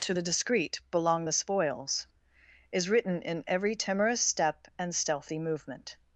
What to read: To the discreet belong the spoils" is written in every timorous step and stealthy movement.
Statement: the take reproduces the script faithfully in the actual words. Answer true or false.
true